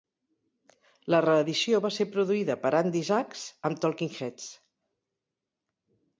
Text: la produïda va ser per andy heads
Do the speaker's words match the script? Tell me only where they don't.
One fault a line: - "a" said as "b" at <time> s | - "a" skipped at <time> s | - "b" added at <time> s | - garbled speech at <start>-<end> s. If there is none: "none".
- "produïda" said as "reedició" at 1.2 s
- "produïda" added at 2.1 s
- "zax amb talking" added at 3.1 s